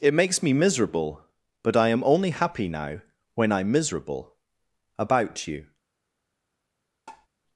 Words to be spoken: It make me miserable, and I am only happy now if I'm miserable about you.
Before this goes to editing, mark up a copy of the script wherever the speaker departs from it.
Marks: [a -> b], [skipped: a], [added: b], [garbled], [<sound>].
It [make -> makes] me miserable, [and -> but] I am only happy now [if -> when] I'm miserable about you. [tap]